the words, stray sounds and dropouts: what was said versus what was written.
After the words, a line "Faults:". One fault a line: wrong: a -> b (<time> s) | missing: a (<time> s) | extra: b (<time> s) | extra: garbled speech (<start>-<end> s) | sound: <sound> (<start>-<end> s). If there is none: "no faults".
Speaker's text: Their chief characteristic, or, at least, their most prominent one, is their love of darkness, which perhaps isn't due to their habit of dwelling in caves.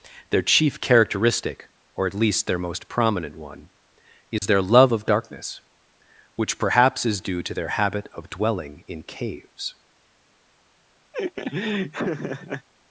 Their chief characteristic, or, at least, their most prominent one, is their love of darkness, which perhaps is due to their habit of dwelling in caves.
Faults:
sound: dropout (4.4-4.4 s)
wrong: isn't -> is (7.1 s)
sound: laugh (11.1-12.7 s)